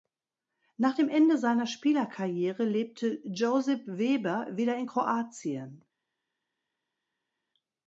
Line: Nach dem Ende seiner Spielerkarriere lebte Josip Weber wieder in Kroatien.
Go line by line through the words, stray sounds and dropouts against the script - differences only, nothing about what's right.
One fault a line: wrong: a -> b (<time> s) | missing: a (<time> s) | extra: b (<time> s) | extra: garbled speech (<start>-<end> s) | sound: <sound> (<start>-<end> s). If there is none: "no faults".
no faults